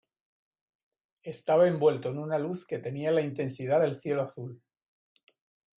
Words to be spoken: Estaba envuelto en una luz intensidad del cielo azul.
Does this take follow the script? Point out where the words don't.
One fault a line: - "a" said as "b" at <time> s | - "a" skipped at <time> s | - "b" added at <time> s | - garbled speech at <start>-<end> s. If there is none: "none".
- "que tenía la" added at 2.6 s